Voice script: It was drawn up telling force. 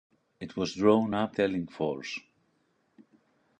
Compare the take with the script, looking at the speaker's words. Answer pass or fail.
pass